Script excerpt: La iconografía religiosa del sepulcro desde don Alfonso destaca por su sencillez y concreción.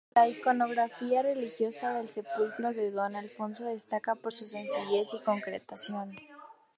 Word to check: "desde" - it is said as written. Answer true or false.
false